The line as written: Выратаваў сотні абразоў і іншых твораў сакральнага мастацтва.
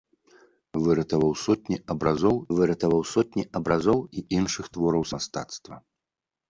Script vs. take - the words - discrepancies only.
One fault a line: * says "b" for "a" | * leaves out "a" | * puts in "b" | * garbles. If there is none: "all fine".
* puts in "выратаваў сотні абразоў"
* leaves out "сакральнага"